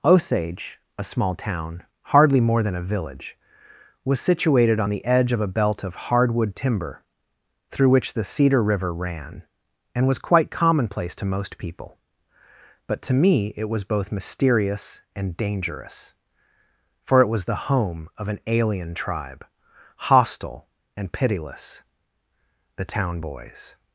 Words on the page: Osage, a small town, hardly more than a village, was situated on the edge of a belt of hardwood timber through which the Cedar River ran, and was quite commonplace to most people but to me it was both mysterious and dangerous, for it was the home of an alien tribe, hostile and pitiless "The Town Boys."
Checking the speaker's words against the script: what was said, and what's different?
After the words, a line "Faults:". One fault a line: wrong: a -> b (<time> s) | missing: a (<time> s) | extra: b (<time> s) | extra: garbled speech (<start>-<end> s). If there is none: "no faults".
Osage, a small town, hardly more than a village, was situated on the edge of a belt of hardwood timber through which the Cedar River ran, and was quite commonplace to most people but to me it was both mysterious and dangerous, for it was the home of an alien tribe, hostile and pitiless "The Town Boys."
Faults:
no faults